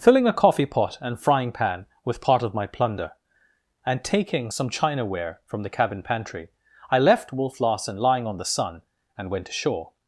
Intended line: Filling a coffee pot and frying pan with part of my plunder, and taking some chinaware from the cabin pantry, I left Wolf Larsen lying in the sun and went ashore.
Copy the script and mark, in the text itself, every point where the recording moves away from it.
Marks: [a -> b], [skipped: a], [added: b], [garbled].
Filling a coffee pot and frying pan with part of my plunder, and taking some chinaware from the cabin pantry, I left Wolf Larsen lying [in -> on] the sun and went ashore.